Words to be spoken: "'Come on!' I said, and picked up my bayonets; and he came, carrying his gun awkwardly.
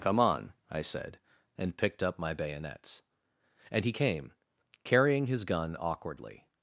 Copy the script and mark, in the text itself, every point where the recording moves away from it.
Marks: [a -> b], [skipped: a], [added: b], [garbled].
"'Come on!' I said, and picked up my bayonets; and he came, carrying his gun awkwardly.